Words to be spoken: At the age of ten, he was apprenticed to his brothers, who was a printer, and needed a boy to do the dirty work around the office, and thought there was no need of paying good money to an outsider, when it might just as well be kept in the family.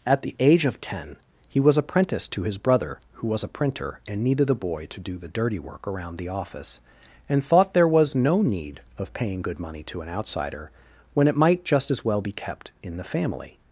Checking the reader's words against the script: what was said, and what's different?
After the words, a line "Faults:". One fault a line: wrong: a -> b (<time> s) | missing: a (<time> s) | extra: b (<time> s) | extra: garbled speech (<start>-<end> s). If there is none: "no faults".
At the age of ten, he was apprenticed to his brother, who was a printer, and needed a boy to do the dirty work around the office, and thought there was no need of paying good money to an outsider, when it might just as well be kept in the family.
Faults:
wrong: brothers -> brother (2.6 s)